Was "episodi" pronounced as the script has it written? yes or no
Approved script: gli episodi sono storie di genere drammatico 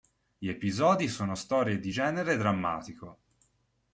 yes